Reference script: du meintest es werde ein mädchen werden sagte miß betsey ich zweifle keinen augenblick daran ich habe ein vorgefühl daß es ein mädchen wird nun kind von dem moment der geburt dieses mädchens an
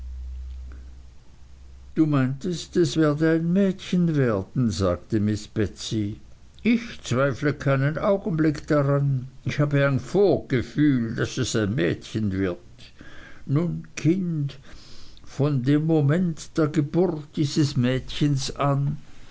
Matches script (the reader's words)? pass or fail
pass